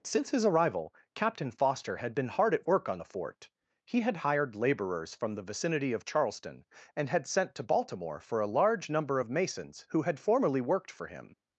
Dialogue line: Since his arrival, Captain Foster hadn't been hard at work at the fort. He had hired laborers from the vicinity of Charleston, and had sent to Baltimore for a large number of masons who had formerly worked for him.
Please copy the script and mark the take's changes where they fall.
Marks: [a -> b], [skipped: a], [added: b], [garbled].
Since his arrival, Captain Foster [hadn't -> had] been hard at work [at -> on] the fort. He had hired laborers from the vicinity of Charleston, and had sent to Baltimore for a large number of masons who had formerly worked for him.